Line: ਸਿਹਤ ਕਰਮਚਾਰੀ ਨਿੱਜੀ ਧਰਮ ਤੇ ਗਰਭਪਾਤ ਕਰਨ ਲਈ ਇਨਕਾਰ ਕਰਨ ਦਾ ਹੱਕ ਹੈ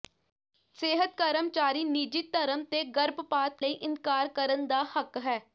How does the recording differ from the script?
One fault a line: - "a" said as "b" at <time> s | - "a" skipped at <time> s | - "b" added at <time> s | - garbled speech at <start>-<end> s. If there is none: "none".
- "ਕਰਨ" skipped at 3.6 s